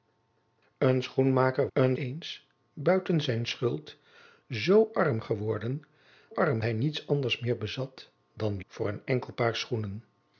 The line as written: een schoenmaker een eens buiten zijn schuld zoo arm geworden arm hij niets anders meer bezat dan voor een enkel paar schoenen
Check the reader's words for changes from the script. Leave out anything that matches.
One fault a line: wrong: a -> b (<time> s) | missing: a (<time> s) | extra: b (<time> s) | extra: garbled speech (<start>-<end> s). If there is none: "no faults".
no faults